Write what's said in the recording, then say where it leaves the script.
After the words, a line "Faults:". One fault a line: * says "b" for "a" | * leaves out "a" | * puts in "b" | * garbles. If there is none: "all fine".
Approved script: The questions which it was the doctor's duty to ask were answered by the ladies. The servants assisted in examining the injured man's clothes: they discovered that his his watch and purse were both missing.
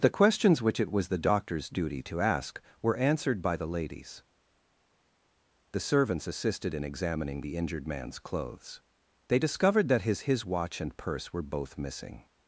The questions which it was the doctor's duty to ask were answered by the ladies. The servants assisted in examining the injured man's clothes: they discovered that his his watch and purse were both missing.
Faults:
all fine